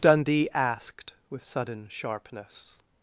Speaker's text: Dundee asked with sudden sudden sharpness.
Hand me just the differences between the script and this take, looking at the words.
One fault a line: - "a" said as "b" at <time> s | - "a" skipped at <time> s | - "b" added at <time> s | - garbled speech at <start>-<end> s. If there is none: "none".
- "sudden" skipped at 1.9 s